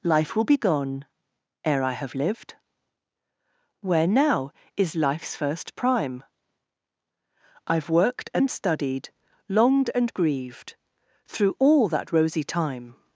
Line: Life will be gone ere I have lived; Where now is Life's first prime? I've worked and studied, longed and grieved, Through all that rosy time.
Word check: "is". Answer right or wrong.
right